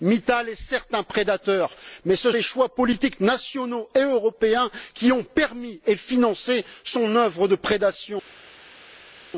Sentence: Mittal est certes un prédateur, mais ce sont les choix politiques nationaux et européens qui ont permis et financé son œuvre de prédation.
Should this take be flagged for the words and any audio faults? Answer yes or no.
yes